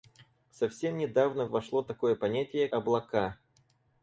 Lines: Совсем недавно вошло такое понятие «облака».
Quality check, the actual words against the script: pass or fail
pass